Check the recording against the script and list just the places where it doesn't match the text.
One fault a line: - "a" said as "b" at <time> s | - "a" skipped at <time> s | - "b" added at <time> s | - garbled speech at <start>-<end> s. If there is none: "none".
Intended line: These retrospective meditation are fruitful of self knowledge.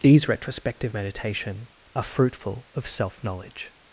none